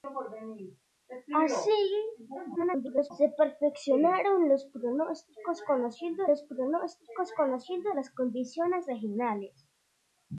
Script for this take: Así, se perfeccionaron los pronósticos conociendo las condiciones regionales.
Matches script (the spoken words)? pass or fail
fail